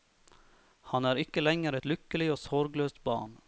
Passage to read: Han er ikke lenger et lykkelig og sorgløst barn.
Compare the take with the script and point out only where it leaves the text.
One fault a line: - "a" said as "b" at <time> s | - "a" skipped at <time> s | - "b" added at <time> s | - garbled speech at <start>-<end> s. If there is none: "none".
none